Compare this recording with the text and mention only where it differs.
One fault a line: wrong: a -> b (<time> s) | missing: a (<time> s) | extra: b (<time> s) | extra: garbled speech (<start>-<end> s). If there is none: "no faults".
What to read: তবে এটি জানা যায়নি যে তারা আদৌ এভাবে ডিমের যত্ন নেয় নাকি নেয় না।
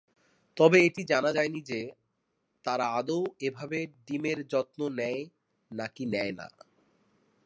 no faults